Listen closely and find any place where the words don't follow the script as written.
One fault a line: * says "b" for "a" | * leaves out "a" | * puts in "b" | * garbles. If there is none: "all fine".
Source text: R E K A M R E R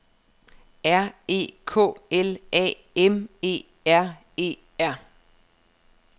* puts in "L"
* puts in "E"